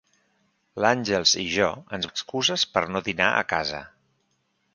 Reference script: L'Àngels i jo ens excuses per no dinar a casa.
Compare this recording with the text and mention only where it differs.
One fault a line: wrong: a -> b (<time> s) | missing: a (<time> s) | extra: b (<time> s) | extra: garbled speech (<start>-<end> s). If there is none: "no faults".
no faults